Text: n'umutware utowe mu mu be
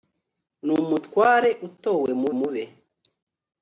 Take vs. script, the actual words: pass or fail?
pass